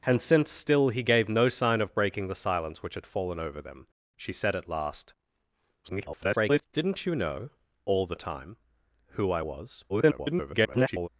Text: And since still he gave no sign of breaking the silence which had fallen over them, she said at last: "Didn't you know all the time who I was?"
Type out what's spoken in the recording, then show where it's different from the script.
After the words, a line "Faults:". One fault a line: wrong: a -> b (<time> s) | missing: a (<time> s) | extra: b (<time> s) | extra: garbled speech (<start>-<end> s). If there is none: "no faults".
And since still he gave no sign of breaking the silence which had fallen over them, she said at last: [garbled] "Didn't you know all the time who I was?" [garbled]
Faults:
extra: garbled speech (5.8-6.7 s)
extra: garbled speech (9.9-11.1 s)